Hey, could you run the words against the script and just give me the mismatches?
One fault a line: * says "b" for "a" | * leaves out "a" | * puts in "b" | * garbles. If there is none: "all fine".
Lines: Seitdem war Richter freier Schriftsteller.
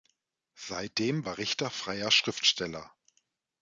all fine